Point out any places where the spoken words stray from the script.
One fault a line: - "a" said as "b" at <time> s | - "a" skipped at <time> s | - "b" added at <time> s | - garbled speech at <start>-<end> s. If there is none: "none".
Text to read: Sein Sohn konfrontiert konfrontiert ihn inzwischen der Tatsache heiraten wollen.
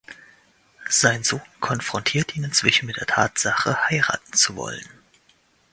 - "konfrontiert" skipped at 2.4 s
- "mit" added at 2.9 s
- "zu" added at 4.3 s